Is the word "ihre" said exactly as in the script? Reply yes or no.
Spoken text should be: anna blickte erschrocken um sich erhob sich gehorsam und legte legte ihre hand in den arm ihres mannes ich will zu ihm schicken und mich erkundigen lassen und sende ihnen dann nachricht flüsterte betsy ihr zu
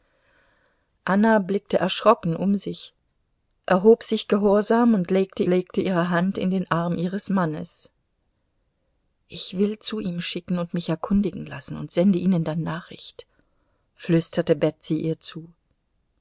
yes